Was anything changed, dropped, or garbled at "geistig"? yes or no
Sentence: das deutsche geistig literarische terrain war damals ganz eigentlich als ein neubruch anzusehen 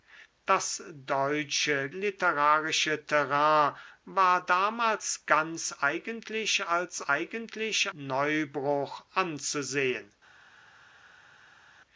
yes